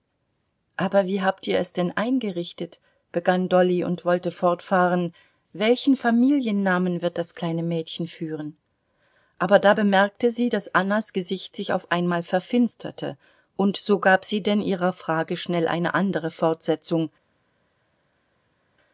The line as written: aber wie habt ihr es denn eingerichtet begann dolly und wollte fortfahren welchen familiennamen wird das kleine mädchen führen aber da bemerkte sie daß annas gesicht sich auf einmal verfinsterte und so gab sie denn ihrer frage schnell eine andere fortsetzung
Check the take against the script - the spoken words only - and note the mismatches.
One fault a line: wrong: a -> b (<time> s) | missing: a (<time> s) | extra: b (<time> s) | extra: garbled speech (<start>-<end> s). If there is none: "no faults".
no faults